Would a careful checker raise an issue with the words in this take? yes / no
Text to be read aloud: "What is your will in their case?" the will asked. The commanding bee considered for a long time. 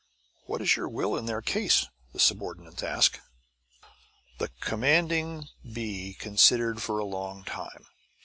yes